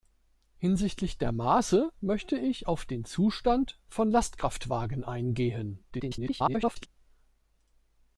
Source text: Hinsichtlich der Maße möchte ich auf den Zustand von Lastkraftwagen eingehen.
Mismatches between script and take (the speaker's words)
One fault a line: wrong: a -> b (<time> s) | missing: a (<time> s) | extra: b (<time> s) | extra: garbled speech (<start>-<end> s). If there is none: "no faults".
extra: garbled speech (5.9-6.9 s)